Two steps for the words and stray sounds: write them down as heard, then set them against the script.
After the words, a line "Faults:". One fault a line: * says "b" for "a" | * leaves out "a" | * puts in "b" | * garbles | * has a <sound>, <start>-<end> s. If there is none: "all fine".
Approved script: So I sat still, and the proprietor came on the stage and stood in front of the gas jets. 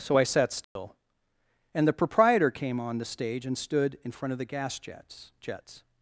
So I sat still, and the proprietor came on the stage and stood in front of the gas jets jets.
Faults:
* has a dropout, 0.6-0.8 s
* puts in "jets"